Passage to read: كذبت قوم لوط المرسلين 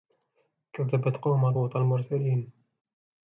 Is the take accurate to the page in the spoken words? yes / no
yes